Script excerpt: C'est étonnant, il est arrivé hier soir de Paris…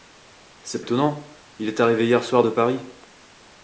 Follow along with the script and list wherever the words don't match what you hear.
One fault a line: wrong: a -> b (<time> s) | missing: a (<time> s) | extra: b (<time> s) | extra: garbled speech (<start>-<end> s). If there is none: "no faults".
no faults